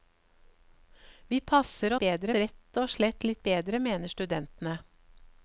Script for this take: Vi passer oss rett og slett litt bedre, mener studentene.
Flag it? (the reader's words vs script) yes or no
yes